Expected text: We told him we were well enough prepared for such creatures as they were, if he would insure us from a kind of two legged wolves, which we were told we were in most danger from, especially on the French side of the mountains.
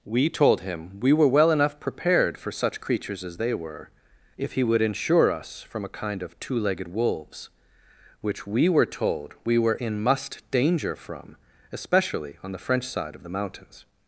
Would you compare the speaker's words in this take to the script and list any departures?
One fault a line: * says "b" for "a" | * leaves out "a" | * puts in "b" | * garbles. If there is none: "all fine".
* says "must" for "most"